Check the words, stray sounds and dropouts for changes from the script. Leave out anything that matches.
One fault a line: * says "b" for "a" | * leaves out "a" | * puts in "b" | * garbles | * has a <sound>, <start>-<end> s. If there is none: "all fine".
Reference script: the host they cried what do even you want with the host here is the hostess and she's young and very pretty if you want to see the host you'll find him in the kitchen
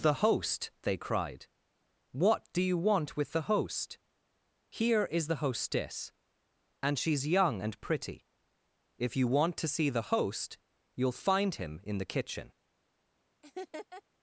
* leaves out "even"
* leaves out "very"
* has a laugh, 13.4-14.0 s